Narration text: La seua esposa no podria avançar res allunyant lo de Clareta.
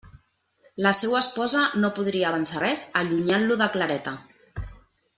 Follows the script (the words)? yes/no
yes